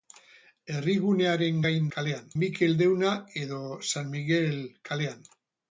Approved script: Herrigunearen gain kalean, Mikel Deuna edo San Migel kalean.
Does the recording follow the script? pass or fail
pass